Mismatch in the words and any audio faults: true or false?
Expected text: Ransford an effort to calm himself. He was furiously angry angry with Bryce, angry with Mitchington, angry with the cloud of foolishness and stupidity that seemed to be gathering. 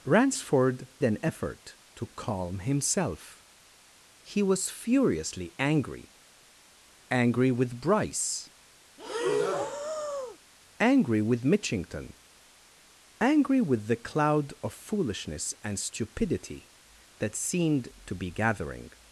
true